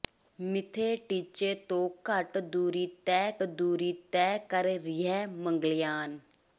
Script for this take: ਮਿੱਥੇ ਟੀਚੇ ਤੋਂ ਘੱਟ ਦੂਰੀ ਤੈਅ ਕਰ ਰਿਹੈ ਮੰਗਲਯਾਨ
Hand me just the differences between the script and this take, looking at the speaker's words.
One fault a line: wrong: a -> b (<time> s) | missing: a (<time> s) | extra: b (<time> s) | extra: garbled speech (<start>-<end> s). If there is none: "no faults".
extra: ਦੂਰੀ ਤੈਅ (3.4 s)